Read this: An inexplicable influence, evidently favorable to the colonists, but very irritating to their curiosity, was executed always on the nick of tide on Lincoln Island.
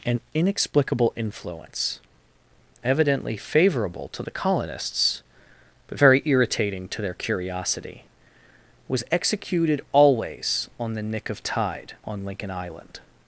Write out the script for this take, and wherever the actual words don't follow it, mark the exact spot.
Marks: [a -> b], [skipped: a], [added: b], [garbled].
An inexplicable influence, evidently favorable to the colonists, but very irritating to their curiosity, was executed always on the nick of tide on Lincoln Island.